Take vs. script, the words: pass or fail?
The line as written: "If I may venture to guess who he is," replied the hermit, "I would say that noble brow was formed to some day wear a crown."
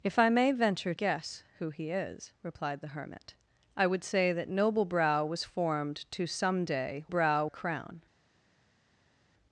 fail